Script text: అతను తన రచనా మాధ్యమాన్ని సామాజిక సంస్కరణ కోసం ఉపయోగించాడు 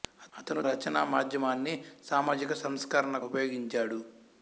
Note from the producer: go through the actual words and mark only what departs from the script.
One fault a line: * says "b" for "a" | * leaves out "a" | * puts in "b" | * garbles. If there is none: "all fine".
* leaves out "తన"
* leaves out "కోసం"